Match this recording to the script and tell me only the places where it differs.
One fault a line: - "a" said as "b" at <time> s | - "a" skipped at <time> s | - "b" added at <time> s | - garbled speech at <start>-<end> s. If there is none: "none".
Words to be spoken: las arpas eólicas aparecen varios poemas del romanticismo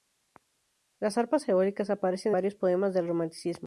none